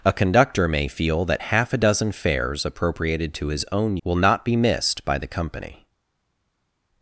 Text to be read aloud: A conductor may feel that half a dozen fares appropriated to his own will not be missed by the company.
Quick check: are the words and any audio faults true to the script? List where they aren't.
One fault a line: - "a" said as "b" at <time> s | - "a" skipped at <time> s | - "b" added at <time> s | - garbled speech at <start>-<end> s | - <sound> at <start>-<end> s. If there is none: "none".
none